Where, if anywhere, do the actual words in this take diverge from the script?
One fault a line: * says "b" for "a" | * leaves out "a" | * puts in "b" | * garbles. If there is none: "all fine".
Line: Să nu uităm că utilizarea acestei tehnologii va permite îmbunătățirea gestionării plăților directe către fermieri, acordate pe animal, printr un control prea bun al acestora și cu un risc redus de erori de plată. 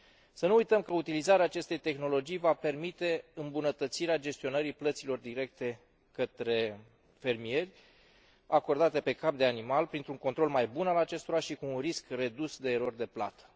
* puts in "cap de"
* says "mai" for "prea"